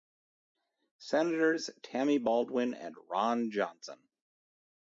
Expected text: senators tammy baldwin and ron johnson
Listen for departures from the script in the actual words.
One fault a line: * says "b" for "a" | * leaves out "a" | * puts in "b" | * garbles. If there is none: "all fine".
all fine